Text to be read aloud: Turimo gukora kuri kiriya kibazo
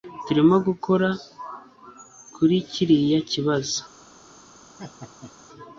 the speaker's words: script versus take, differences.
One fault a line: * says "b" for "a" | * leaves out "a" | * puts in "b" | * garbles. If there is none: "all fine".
all fine